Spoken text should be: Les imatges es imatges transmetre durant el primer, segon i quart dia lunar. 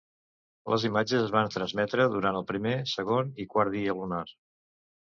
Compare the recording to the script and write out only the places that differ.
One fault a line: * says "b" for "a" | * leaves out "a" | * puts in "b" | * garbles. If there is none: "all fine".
* says "van" for "imatges"